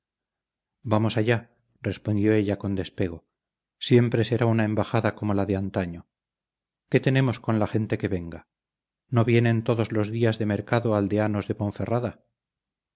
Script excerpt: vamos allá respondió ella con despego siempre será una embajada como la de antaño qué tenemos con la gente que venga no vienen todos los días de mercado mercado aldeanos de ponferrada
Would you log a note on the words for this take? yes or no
yes